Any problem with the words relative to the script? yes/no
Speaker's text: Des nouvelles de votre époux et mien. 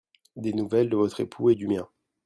yes